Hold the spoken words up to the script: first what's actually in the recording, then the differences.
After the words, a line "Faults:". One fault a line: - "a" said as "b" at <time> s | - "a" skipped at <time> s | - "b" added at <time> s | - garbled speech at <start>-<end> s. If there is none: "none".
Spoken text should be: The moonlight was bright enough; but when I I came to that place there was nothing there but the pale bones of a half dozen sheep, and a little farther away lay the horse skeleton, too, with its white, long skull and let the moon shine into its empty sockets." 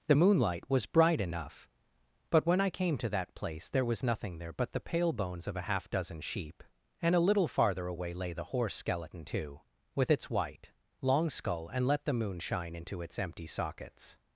The moonlight was bright enough; but when I came to that place there was nothing there but the pale bones of a half dozen sheep, and a little farther away lay the horse skeleton, too, with its white, long skull and let the moon shine into its empty sockets."
Faults:
- "I" skipped at 2.7 s